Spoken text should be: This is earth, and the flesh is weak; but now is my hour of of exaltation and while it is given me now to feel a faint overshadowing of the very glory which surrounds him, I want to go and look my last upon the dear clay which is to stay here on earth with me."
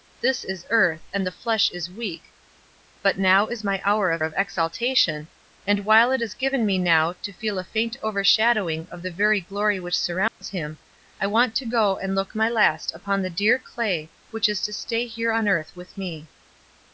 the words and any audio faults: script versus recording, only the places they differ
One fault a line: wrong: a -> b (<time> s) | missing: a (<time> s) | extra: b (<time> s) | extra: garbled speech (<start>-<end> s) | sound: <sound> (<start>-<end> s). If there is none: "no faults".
sound: dropout (10.3-10.4 s)